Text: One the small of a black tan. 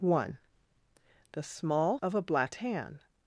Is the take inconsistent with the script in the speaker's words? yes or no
no